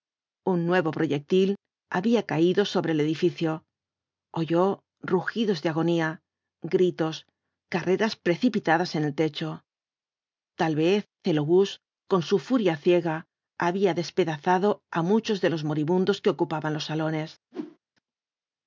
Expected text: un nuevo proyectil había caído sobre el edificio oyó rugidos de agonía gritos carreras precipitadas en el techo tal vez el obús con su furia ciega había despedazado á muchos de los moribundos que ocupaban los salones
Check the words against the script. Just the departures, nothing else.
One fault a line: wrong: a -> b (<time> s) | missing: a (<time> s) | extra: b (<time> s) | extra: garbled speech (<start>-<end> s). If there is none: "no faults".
no faults